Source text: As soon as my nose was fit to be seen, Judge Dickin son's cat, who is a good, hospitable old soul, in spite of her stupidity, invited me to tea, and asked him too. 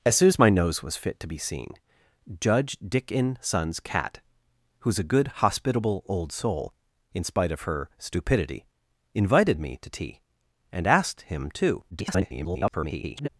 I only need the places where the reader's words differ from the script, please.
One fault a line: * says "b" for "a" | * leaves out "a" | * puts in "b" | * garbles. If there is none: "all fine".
* garbles